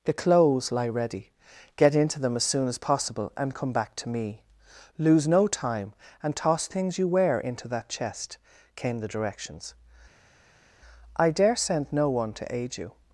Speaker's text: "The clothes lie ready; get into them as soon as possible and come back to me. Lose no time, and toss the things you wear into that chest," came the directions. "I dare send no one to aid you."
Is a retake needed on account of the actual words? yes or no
yes